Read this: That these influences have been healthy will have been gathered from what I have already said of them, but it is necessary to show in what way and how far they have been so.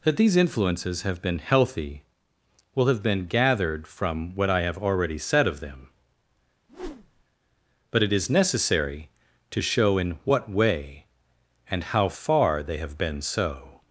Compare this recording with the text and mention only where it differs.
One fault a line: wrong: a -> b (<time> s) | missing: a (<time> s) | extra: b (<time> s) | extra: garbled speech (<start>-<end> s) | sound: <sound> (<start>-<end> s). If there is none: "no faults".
sound: whoosh (6.7-7.2 s)